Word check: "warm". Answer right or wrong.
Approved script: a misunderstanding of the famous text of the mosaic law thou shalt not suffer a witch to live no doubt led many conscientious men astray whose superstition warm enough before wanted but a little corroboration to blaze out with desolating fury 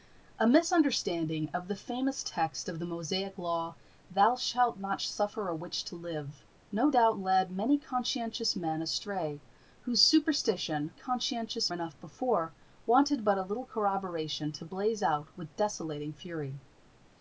wrong